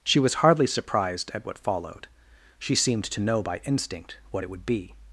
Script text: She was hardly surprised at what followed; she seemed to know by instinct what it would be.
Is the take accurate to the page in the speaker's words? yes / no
yes